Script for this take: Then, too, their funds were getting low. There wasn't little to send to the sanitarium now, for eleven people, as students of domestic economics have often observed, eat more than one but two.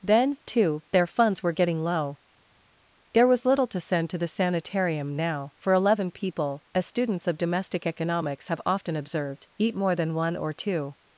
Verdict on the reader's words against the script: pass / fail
fail